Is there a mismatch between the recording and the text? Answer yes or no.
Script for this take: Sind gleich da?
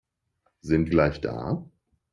no